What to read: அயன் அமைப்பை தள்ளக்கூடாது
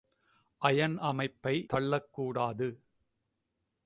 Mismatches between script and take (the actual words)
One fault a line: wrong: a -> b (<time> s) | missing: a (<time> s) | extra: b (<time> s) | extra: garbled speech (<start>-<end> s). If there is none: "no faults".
no faults